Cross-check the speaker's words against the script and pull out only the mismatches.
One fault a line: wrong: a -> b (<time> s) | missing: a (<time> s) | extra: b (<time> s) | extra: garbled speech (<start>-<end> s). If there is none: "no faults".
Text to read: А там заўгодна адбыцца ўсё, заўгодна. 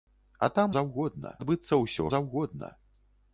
no faults